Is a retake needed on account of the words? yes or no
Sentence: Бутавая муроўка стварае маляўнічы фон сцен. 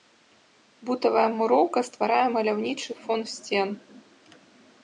no